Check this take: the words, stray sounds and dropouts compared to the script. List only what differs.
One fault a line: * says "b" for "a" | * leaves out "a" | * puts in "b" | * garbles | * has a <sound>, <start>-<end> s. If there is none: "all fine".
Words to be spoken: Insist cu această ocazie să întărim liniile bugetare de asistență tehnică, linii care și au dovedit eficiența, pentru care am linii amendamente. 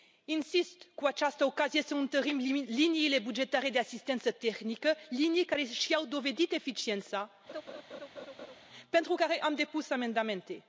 * has a laugh, 7.5-8.6 s
* says "depus" for "linii"